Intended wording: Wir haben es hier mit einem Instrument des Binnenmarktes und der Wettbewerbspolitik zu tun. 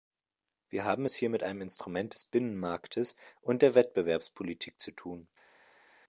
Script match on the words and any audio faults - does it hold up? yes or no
yes